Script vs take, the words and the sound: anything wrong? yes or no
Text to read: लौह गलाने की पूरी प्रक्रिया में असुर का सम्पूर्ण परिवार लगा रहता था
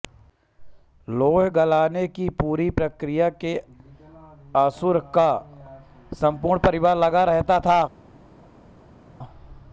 no